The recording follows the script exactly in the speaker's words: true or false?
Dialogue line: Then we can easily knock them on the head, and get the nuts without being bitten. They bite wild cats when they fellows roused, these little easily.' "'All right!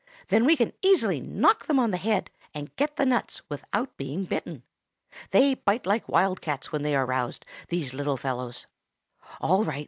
false